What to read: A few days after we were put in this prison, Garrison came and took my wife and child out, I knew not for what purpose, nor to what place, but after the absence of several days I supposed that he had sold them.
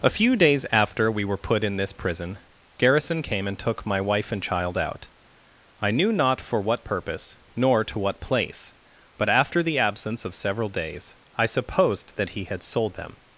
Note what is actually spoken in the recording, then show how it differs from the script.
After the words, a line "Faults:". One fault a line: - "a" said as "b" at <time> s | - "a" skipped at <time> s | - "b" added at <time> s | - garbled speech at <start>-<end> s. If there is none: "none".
A few days after we were put in this prison, Garrison came and took my wife and child out, I knew not for what purpose, nor to what place, but after the absence of several days I supposed that he had sold them.
Faults:
none